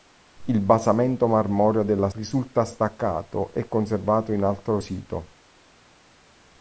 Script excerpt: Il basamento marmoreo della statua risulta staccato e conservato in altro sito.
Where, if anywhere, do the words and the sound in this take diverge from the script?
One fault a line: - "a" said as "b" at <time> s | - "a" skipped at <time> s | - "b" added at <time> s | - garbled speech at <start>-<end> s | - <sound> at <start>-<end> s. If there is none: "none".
- "statua" skipped at 2.1 s